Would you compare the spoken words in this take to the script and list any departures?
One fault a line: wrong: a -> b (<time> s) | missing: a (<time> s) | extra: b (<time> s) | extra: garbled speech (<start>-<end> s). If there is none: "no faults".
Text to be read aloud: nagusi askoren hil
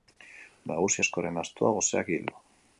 extra: astoa goseak (1.4 s)